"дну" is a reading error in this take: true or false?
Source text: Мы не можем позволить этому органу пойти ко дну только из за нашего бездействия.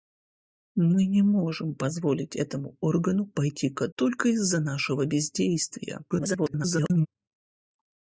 true